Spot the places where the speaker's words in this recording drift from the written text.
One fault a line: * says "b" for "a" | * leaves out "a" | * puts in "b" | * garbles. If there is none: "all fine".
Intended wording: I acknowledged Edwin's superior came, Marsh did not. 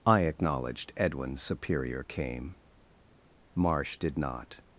all fine